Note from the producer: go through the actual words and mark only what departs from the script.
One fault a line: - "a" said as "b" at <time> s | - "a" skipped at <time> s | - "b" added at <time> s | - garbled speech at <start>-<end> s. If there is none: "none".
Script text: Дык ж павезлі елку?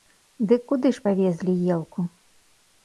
- "куды" added at 0.7 s